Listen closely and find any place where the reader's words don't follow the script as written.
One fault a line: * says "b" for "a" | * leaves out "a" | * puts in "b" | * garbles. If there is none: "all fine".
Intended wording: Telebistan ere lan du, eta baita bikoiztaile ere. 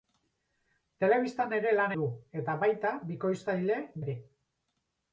all fine